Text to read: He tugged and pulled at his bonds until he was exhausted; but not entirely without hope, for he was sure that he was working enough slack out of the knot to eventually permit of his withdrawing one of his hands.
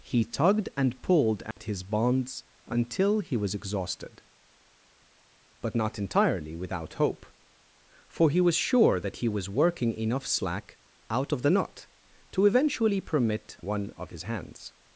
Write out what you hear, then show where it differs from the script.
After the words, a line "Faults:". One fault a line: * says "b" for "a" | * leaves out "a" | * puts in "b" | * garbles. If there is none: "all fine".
He tugged and pulled at his bonds until he was exhausted; but not entirely without hope, for he was sure that he was working enough slack out of the knot to eventually permit one of his hands.
Faults:
* leaves out "of his withdrawing"